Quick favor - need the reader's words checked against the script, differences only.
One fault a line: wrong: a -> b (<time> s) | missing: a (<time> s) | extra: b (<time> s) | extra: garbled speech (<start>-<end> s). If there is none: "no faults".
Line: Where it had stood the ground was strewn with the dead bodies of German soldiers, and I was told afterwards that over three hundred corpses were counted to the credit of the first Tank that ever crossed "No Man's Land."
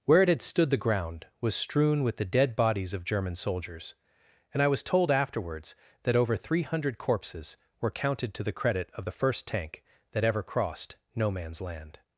no faults